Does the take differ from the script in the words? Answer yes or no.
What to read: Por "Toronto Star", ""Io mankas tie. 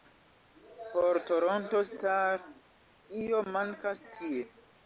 no